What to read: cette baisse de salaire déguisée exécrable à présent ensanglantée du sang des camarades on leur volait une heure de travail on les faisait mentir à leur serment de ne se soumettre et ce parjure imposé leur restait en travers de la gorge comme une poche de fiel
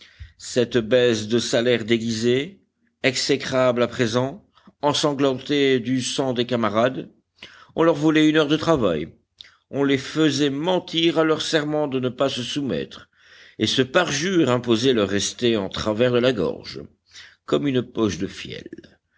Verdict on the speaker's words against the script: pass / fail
fail